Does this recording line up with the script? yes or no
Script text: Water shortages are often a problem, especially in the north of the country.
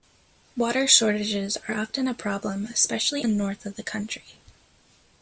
no